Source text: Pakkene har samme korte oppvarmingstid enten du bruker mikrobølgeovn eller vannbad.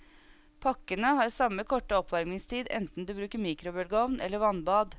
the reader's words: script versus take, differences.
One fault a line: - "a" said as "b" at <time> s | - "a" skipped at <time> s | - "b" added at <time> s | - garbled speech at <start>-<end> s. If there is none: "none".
none